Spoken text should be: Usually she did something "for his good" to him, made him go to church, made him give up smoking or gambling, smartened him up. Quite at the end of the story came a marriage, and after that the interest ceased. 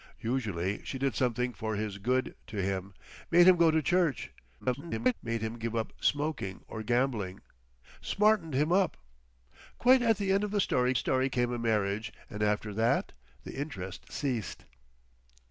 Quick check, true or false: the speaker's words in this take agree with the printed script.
false